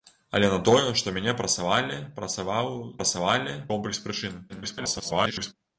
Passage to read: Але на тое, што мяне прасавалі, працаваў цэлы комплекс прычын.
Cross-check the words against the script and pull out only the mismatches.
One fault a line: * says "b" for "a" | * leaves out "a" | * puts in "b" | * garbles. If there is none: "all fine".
* says "прасавалі" for "цэлы"
* garbles